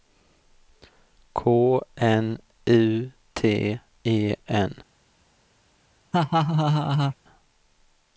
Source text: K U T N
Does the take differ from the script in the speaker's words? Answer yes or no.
yes